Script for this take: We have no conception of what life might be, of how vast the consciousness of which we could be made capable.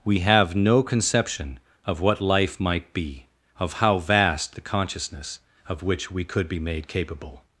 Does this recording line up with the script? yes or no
yes